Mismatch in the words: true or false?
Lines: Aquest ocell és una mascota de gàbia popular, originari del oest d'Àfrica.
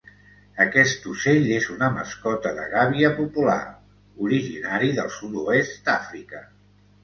true